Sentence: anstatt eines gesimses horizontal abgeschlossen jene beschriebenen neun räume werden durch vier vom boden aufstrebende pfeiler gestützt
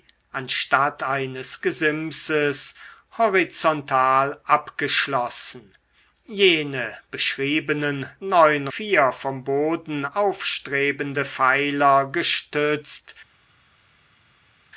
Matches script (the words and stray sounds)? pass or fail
fail